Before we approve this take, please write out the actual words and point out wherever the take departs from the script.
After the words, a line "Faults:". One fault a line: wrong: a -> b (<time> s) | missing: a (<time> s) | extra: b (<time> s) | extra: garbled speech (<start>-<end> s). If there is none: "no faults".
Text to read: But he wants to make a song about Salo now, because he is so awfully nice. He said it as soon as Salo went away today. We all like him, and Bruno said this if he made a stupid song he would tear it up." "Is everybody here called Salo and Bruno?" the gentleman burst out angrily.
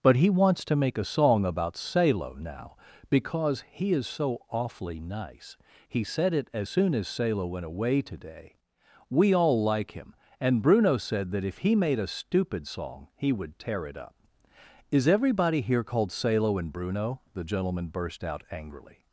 But he wants to make a song about Salo now, because he is so awfully nice. He said it as soon as Salo went away today. We all like him, and Bruno said that if he made a stupid song he would tear it up." "Is everybody here called Salo and Bruno?" the gentleman burst out angrily.
Faults:
wrong: this -> that (11.3 s)